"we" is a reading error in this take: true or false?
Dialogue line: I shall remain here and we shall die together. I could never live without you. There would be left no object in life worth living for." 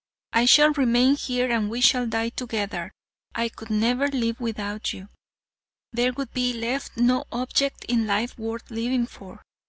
false